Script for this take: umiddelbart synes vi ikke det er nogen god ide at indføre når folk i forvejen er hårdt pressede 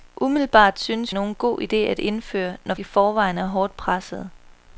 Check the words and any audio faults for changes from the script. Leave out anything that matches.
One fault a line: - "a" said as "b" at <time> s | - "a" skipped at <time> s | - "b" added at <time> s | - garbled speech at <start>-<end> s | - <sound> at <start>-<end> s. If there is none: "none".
- "vi ikke det" skipped at 1.1 s
- "folk" skipped at 2.7 s